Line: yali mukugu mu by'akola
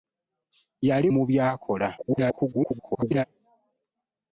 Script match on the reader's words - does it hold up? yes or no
no